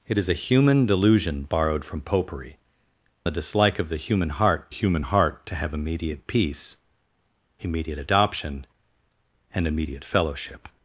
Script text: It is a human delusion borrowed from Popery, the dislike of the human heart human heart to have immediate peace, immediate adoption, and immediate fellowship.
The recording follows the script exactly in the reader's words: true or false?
true